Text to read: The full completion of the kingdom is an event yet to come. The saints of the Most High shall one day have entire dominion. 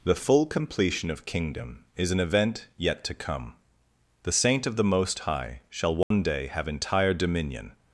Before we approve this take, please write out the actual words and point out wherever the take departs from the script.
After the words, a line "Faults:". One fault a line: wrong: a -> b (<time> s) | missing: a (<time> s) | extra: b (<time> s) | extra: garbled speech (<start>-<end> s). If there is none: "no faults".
The full completion of kingdom is an event yet to come. The saint of the Most High shall one day have entire dominion.
Faults:
missing: the (1.2 s)
wrong: saints -> saint (4.3 s)